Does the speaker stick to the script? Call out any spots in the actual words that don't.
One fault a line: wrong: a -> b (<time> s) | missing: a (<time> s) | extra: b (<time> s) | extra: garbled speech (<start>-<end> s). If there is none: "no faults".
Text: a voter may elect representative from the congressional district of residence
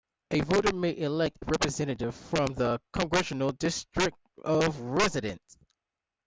no faults